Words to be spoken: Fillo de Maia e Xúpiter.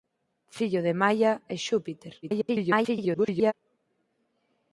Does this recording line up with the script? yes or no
no